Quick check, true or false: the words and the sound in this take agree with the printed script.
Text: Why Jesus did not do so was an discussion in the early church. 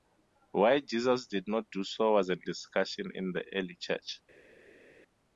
true